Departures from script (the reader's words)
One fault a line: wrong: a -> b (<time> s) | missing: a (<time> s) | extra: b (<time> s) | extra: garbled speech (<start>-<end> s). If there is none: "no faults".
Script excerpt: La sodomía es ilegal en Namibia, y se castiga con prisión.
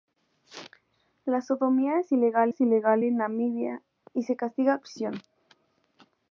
extra: es ilegal (2.5 s)
missing: con (4.8 s)